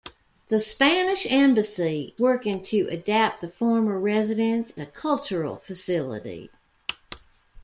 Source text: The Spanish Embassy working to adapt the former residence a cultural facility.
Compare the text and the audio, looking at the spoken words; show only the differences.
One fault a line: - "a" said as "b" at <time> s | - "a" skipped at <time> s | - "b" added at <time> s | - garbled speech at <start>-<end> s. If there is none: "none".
none